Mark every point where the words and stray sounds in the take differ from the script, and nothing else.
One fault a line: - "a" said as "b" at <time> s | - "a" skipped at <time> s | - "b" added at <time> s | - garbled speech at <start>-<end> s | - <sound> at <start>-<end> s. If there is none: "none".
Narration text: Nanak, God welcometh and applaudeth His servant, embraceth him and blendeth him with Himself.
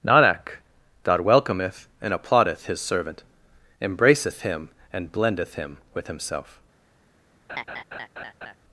- laugh at 7.5-8.6 s